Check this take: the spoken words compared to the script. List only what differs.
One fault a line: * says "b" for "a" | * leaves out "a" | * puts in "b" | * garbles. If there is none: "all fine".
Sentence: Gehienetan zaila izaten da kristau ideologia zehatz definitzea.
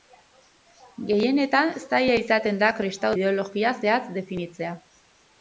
all fine